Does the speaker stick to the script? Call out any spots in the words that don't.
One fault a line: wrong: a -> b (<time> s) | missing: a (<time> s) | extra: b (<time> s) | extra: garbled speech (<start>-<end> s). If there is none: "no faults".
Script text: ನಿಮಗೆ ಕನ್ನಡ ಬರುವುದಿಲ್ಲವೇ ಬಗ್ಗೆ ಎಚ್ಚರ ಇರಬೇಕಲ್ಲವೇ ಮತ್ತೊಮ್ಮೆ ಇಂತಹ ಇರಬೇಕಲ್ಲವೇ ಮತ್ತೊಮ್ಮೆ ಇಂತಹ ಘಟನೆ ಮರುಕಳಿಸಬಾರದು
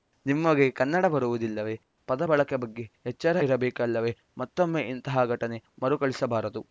extra: ಪದ ಬಳಕೆ (2.1 s)
missing: ಇರಬೇಕಲ್ಲವೇ ಮತ್ತೊಮ್ಮೆ ಇಂತಹ (5.2 s)